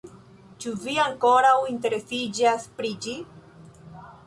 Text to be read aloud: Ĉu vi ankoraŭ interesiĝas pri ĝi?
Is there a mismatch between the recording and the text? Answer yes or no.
no